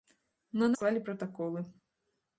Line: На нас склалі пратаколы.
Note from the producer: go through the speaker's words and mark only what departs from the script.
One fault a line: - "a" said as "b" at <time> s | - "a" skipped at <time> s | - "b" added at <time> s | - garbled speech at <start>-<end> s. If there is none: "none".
- "нас" skipped at 0.7 s